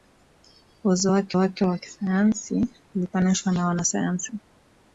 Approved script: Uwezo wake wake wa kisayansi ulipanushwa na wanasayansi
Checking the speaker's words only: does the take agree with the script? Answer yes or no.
yes